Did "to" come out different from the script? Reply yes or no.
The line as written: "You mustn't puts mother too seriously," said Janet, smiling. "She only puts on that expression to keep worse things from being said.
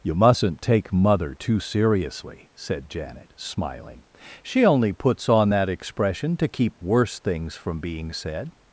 no